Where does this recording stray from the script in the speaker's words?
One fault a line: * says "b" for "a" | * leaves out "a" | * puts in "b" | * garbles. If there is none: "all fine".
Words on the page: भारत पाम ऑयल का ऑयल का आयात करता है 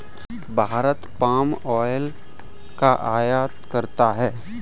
* leaves out "ऑयल का"